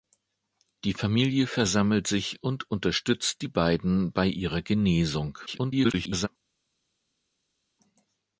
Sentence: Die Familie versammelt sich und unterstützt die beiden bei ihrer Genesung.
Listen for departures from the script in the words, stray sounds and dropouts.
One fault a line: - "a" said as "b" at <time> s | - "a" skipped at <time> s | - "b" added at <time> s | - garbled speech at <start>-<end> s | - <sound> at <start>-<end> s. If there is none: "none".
- garbled speech at 5.5-6.3 s